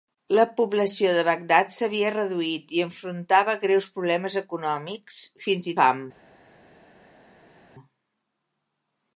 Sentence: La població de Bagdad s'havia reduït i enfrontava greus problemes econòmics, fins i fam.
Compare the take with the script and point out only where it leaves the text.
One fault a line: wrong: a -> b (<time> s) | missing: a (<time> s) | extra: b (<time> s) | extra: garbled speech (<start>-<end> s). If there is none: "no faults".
no faults